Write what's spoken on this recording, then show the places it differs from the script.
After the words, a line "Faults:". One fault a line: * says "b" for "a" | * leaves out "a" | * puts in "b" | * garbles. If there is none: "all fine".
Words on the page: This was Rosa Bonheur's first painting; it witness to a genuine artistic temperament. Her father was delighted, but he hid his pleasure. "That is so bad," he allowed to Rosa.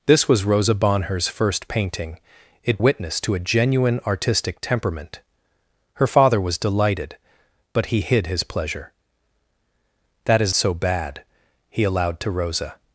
This was Rosa Bonheur's first painting; it witness to a genuine artistic temperament. Her father was delighted, but he hid his pleasure. "That is so bad," he allowed to Rosa.
Faults:
all fine